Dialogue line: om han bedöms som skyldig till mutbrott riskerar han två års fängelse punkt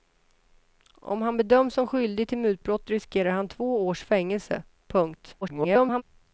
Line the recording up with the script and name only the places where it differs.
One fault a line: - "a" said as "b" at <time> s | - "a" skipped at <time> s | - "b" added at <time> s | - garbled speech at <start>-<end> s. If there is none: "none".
- garbled speech at 5.4-6.0 s